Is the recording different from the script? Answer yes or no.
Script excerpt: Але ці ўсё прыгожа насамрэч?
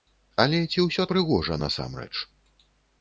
no